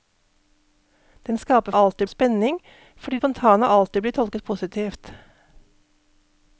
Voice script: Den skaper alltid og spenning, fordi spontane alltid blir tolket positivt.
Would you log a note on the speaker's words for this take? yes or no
no